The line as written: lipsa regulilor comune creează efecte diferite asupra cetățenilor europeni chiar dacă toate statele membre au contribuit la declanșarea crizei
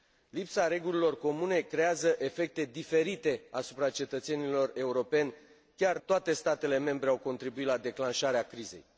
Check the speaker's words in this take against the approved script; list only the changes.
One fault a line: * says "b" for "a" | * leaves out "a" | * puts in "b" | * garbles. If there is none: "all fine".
* leaves out "dacă"